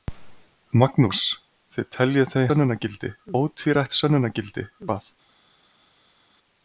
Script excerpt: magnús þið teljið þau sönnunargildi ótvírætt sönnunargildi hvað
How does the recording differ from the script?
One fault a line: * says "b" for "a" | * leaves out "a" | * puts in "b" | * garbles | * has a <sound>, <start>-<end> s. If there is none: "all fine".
all fine